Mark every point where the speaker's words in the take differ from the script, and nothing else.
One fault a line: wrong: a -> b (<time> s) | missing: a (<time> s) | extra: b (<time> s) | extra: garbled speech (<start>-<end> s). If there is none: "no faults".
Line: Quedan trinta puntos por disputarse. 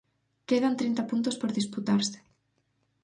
no faults